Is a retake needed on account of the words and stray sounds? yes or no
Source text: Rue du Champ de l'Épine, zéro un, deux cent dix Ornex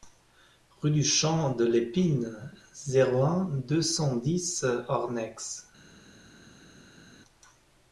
no